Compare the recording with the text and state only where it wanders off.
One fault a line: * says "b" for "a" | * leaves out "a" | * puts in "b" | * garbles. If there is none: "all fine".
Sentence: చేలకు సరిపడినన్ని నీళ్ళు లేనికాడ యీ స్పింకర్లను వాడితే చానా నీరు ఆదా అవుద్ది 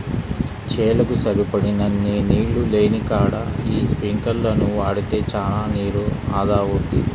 all fine